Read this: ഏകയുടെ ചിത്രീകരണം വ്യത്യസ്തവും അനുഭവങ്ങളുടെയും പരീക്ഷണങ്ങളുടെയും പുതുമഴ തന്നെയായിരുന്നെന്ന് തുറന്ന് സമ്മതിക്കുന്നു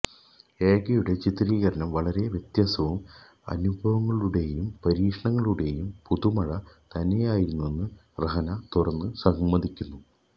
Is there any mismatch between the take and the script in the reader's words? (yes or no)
yes